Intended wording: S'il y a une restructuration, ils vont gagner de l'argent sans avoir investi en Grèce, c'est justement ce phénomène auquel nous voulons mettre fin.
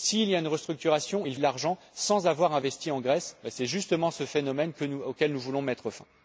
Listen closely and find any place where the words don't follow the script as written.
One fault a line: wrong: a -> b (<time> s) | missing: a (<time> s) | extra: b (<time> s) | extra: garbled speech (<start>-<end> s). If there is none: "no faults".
missing: vont gagner (1.4 s)